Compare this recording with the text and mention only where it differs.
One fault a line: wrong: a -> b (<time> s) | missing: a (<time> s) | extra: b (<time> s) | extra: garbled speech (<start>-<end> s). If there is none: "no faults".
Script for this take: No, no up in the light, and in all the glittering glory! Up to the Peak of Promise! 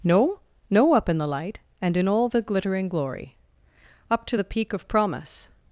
no faults